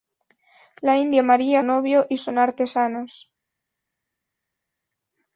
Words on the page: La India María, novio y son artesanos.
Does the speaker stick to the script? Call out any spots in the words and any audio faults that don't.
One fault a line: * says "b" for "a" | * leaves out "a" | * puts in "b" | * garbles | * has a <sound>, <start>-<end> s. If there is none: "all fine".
all fine